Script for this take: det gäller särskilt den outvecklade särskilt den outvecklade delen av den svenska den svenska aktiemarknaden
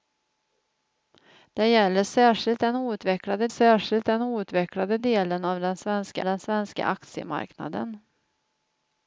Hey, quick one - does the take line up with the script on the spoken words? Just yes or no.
yes